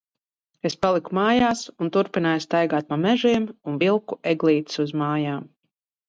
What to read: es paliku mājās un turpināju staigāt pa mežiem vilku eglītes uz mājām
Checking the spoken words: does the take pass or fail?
fail